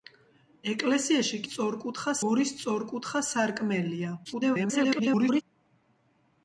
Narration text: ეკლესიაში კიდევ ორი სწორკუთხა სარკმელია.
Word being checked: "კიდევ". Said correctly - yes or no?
no